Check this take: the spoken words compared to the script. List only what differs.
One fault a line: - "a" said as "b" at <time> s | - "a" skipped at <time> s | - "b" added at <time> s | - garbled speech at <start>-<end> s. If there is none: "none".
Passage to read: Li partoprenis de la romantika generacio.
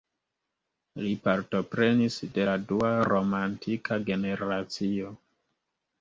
- "dua" added at 2.7 s